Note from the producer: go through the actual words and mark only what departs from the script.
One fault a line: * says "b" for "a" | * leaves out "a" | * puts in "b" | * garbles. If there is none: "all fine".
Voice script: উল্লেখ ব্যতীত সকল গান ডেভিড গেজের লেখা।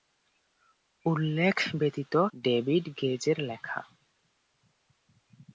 * leaves out "সকল গান"